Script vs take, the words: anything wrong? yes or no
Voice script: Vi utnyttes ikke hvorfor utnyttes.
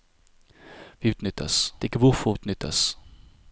no